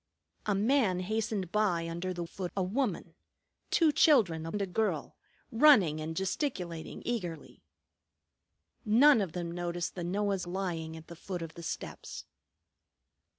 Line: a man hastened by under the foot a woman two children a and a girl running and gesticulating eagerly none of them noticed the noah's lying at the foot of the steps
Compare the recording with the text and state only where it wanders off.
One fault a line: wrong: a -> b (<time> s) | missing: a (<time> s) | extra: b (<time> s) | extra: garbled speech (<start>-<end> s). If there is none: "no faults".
no faults